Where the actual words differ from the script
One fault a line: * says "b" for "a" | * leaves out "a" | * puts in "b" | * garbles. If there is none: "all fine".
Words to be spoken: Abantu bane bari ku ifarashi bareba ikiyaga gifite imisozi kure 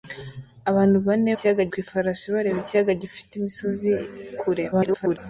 * says "ikiyaga" for "bari"
* garbles